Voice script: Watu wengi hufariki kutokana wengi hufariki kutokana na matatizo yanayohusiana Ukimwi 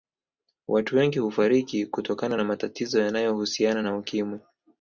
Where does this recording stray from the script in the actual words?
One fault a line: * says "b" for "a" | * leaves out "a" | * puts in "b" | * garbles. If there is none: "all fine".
* leaves out "wengi hufariki kutokana"
* puts in "na"